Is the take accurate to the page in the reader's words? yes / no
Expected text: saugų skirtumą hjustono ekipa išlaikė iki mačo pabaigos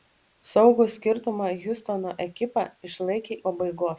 no